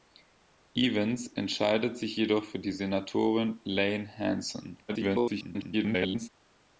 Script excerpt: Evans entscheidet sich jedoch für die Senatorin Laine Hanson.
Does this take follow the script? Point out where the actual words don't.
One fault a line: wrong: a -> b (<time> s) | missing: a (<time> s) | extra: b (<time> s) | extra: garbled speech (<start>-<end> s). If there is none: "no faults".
extra: garbled speech (4.9-6.3 s)